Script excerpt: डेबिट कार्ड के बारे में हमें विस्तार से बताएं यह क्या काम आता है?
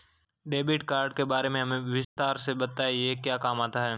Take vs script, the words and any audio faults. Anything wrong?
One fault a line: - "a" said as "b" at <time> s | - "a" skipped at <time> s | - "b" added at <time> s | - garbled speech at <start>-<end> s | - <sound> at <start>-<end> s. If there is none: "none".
- dropout at 2.0-2.2 s